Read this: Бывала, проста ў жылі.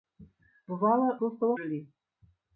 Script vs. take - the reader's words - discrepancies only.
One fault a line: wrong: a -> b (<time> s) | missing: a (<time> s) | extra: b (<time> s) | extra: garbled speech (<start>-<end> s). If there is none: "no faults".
no faults